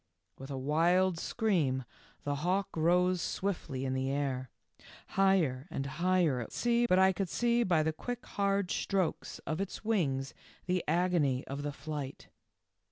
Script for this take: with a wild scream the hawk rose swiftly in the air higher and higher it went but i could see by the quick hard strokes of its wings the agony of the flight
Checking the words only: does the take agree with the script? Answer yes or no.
no